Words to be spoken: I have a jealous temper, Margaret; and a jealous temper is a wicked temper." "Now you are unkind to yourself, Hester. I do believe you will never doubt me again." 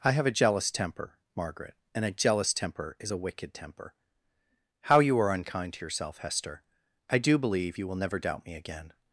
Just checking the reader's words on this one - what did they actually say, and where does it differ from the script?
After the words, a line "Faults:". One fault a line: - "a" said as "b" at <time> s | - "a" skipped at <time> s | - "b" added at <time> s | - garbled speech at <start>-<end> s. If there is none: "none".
I have a jealous temper, Margaret; and a jealous temper is a wicked temper." "How you are unkind to yourself, Hester. I do believe you will never doubt me again."
Faults:
- "Now" said as "How" at 4.9 s